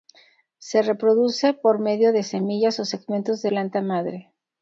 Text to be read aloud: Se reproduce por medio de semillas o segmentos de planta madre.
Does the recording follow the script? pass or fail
pass